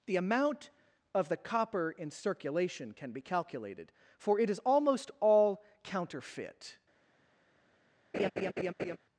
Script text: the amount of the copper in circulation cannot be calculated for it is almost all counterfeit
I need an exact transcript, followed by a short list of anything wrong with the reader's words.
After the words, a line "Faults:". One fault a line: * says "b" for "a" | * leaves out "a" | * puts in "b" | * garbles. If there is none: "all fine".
the amount of the copper in circulation can be calculated for it is almost all counterfeit
Faults:
* says "can" for "cannot"